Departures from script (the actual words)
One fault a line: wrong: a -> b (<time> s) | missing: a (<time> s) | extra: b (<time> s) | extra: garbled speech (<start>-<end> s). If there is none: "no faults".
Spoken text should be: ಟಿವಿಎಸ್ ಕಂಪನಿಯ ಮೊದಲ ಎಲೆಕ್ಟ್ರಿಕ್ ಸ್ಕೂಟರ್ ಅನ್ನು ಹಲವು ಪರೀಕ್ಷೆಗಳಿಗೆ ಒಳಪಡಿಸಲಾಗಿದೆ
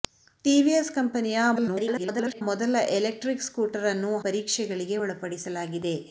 extra: garbled speech (1.6-2.4 s)
missing: ಹಲವು (4.1 s)